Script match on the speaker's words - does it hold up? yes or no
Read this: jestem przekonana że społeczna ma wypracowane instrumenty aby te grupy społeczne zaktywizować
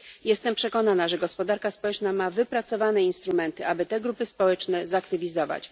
no